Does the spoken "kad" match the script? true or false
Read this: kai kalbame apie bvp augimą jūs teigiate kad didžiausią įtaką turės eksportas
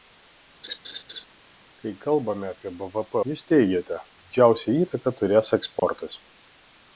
false